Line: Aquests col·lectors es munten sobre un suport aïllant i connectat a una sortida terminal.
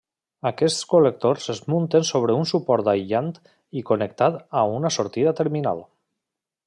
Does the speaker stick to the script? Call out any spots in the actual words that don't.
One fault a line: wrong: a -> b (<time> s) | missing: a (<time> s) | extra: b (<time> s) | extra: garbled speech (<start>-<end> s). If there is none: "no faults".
no faults